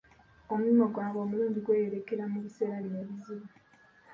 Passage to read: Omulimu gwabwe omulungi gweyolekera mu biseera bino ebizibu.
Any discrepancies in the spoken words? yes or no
no